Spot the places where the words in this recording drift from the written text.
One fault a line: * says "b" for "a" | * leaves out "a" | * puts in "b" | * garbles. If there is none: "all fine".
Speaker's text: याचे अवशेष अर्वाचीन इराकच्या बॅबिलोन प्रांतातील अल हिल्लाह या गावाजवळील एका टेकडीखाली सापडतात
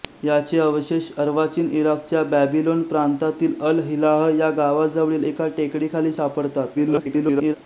* garbles